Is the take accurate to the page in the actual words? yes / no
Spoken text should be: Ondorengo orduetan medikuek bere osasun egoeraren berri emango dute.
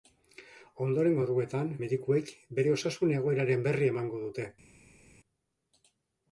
yes